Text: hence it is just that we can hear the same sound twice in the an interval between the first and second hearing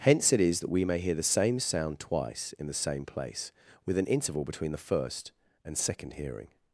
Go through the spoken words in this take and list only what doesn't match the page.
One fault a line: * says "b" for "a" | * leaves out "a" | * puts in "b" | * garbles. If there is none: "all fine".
* leaves out "just"
* says "may" for "can"
* puts in "same place with"